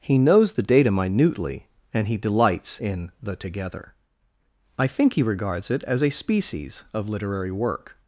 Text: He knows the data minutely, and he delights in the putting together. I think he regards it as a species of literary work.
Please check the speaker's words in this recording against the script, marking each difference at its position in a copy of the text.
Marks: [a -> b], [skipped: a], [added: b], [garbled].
He knows the data minutely, and he delights in the [skipped: putting] together. I think he regards it as a species of literary work.